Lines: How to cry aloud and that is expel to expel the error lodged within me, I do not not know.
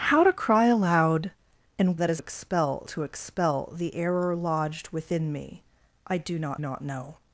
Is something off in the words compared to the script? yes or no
no